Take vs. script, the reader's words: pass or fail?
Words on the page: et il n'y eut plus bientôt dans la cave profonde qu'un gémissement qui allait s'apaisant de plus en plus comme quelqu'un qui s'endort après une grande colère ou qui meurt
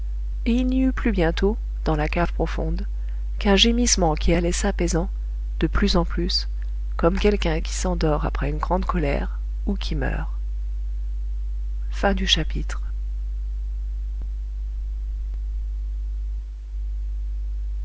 pass